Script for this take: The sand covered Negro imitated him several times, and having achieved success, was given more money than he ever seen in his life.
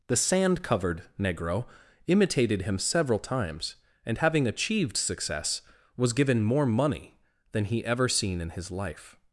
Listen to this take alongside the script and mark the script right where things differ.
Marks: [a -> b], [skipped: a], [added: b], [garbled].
The sand covered Negro imitated him several times, and having achieved success, was given more money than he ever seen in his life.